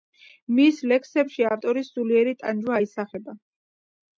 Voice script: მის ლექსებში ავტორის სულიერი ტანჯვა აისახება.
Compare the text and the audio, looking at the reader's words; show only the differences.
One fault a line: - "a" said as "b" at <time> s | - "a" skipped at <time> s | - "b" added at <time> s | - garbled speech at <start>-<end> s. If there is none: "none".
none